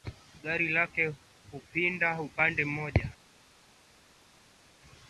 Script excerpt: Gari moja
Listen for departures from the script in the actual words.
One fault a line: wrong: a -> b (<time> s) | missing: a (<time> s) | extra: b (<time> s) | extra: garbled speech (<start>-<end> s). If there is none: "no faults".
extra: lake hupinda upande (0.7 s)